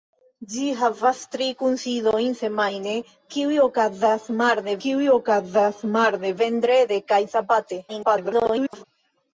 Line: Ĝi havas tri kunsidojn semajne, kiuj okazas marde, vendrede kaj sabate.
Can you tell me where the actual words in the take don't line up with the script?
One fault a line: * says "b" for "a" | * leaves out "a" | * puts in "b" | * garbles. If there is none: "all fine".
* puts in "kiuj okazas marde"
* garbles